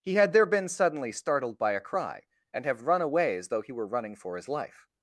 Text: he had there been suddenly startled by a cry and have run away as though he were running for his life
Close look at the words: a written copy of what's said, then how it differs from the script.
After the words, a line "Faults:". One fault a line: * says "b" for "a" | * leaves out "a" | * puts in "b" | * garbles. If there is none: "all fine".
he had there been suddenly startled by a cry and have run away as though he were running for his life
Faults:
all fine